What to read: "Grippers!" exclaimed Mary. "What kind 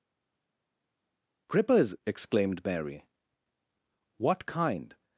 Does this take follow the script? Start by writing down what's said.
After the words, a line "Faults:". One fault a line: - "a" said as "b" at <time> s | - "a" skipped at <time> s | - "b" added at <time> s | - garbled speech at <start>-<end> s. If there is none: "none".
"Grippers!" exclaimed Mary. "What kind
Faults:
none